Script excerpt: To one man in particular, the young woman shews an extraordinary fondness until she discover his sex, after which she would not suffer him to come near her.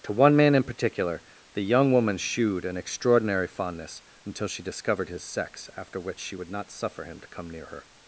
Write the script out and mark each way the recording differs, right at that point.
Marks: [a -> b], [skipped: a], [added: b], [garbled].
To one man in particular, the young woman [shews -> shewed] an extraordinary fondness until she [discover -> discovered] his sex, after which she would not suffer him to come near her.